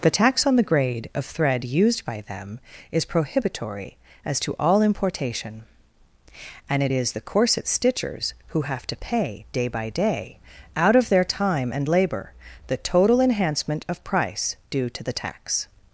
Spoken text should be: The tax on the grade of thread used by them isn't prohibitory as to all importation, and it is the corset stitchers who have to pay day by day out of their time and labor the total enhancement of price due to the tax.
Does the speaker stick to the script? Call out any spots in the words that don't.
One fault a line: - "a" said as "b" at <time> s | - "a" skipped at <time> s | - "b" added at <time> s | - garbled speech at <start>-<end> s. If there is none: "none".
- "isn't" said as "is" at 2.9 s